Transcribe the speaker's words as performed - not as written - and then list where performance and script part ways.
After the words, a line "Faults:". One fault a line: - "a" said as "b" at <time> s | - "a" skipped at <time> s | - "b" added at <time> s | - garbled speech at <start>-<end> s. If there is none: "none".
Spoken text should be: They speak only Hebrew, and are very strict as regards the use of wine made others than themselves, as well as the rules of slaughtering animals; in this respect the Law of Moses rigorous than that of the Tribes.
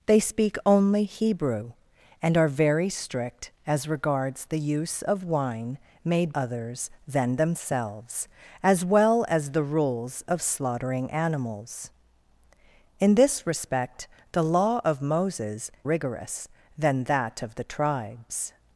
They speak only Hebrew, and are very strict as regards the use of wine made others than themselves, as well as the rules of slaughtering animals; in this respect the Law of Moses rigorous than that of the Tribes.
Faults:
none